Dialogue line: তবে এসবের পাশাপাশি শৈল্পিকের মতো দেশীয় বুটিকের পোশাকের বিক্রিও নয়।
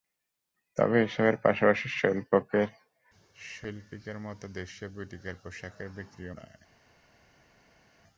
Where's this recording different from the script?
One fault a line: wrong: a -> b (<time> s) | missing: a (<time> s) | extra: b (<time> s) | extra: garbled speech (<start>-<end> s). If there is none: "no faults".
no faults